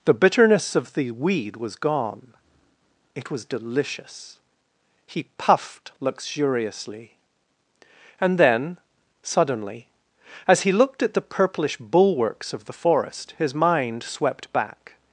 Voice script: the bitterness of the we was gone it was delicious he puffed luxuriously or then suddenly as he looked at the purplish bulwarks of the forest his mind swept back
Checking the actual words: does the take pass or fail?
fail